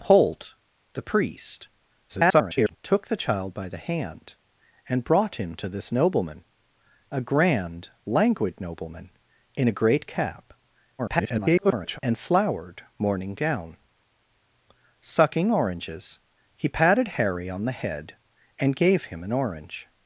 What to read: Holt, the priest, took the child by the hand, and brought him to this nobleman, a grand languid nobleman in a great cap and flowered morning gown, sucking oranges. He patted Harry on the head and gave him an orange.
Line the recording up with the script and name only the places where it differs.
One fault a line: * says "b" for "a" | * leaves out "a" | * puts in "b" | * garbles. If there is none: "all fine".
* garbles
* garbles